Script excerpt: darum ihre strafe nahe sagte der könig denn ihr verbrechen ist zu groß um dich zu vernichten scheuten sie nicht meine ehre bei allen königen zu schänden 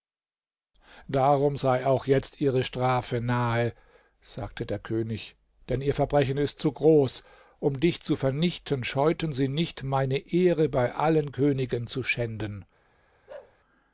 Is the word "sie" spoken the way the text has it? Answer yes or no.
yes